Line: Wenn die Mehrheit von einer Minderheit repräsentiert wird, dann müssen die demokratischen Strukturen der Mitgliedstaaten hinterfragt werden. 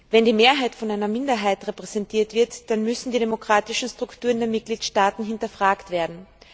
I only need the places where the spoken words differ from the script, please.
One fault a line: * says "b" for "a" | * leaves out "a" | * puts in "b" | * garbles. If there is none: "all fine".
all fine